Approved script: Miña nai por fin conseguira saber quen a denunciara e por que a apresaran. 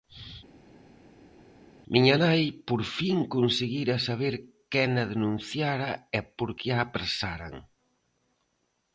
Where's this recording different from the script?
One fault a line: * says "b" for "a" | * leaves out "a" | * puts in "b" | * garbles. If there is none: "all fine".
all fine